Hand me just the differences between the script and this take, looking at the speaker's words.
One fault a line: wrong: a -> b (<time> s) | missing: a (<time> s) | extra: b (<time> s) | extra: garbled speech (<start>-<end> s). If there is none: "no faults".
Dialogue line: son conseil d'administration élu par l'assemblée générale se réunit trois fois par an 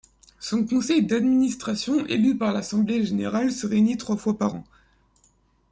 no faults